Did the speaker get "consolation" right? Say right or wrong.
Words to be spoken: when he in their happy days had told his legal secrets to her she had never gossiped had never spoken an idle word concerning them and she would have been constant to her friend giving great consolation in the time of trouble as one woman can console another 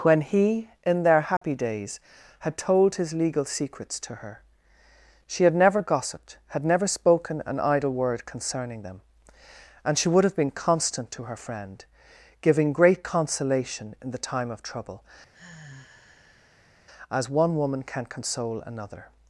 right